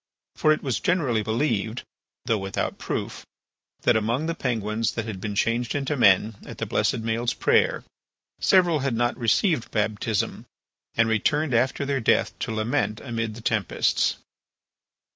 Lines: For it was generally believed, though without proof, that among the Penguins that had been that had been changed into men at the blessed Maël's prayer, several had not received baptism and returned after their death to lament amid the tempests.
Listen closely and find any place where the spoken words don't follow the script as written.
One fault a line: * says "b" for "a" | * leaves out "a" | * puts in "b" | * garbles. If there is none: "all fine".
* leaves out "that had been"